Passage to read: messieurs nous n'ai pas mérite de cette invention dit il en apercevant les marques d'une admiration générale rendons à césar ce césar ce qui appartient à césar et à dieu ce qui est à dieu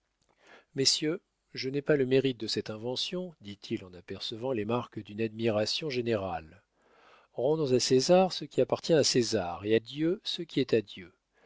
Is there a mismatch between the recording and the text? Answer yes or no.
yes